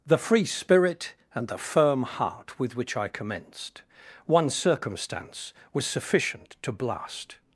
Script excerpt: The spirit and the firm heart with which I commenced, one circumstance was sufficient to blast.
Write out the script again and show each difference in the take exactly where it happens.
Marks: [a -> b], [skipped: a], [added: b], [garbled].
The [added: free] spirit and the firm heart with which I commenced, one circumstance was sufficient to blast.